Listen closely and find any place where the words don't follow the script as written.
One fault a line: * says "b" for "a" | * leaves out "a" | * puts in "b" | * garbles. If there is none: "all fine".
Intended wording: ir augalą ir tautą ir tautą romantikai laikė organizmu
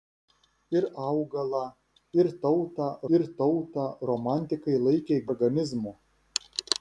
all fine